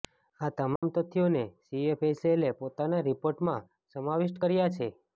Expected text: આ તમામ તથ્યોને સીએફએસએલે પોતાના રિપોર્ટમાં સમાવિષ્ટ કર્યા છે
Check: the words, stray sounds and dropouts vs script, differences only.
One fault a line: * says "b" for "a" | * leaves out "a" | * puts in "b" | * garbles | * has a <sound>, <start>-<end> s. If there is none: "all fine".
* has a dropout, 0.8-0.8 s